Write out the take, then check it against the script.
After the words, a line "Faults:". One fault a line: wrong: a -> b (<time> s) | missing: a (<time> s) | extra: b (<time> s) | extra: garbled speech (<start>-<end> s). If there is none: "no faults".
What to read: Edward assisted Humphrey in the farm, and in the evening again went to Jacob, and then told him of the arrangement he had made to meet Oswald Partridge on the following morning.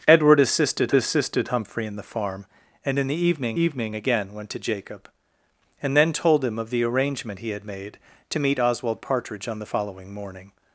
Edward assisted assisted Humphrey in the farm, and in the evening evening again went to Jacob, and then told him of the arrangement he had made to meet Oswald Partridge on the following morning.
Faults:
extra: assisted (0.9 s)
extra: evening (3.6 s)